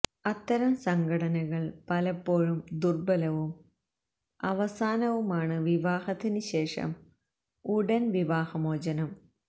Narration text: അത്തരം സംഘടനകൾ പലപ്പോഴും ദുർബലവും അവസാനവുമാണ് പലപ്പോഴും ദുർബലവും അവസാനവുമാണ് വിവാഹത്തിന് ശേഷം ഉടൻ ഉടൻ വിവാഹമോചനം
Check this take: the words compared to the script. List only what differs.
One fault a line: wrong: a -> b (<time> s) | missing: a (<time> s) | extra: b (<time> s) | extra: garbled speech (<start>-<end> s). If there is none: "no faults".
missing: പലപ്പോഴും ദുർബലവും അവസാനവുമാണ് (5.6 s)
missing: ഉടൻ (8.0 s)